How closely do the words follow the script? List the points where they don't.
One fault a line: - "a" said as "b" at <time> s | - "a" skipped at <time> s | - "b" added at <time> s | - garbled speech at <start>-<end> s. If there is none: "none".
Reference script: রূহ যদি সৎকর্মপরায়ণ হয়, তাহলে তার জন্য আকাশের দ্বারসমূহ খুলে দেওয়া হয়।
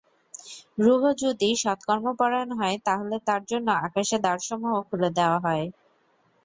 none